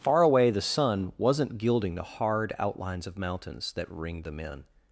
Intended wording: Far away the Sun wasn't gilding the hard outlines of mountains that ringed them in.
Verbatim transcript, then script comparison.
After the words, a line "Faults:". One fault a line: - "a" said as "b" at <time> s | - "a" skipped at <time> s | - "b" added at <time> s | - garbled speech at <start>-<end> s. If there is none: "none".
Far away the Sun wasn't gilding the hard outlines of mountains that ringed them in.
Faults:
none